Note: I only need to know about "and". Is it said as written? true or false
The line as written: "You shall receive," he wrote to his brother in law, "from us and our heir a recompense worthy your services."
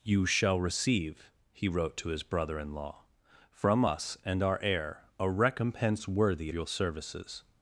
true